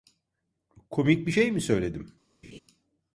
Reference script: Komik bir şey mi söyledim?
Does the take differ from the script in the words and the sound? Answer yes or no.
yes